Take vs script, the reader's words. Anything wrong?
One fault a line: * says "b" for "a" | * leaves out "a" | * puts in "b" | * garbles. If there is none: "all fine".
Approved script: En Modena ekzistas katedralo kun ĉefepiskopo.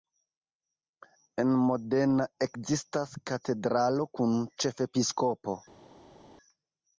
all fine